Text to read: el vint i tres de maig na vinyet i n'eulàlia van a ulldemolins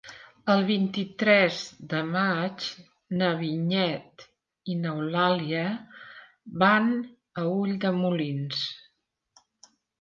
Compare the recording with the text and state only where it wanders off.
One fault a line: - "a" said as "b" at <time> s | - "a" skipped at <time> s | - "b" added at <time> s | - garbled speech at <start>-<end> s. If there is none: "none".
none